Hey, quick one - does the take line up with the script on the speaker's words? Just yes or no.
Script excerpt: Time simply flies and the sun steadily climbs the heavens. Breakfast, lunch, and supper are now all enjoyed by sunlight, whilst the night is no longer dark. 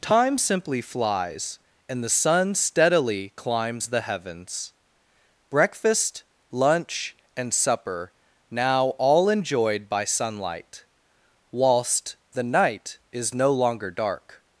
no